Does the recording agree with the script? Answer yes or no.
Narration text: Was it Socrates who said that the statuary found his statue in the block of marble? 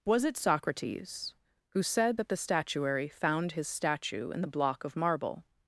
yes